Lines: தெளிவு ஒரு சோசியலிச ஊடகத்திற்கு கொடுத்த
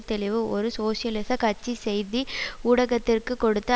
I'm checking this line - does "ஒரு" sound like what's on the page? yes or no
yes